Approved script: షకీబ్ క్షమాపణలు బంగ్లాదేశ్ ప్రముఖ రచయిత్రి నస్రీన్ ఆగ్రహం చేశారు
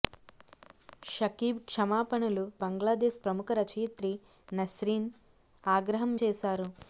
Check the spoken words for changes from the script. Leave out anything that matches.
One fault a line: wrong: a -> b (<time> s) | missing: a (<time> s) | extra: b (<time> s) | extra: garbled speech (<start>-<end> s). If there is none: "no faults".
no faults